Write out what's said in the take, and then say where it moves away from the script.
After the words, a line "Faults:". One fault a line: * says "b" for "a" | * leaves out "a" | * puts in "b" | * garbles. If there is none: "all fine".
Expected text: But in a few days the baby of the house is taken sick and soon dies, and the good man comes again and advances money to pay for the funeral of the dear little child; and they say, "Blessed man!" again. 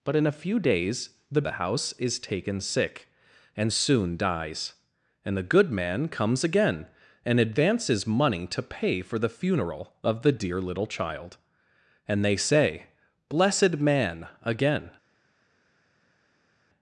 But in a few days the the house is taken sick and soon dies, and the good man comes again and advances money to pay for the funeral of the dear little child; and they say, "Blessed man!" again.
Faults:
* leaves out "baby of"